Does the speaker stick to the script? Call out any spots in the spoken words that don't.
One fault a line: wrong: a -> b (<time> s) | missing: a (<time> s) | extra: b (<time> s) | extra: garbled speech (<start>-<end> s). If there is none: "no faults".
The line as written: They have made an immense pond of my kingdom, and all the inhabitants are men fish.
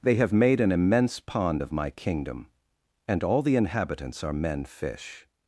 no faults